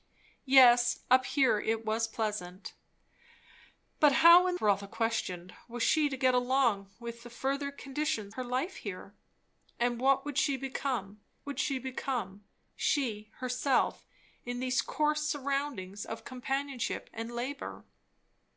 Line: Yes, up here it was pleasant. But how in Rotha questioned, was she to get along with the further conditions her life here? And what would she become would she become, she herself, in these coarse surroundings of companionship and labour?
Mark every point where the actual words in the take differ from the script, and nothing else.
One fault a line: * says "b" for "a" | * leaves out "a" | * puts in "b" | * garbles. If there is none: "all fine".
all fine